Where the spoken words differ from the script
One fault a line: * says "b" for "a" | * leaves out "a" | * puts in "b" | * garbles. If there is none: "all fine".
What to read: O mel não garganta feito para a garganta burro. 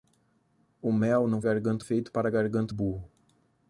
all fine